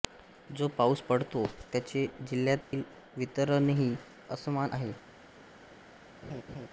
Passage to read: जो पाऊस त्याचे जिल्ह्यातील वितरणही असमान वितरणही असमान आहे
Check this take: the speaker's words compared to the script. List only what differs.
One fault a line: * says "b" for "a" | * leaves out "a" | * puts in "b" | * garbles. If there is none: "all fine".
* puts in "पडतो"
* leaves out "वितरणही असमान"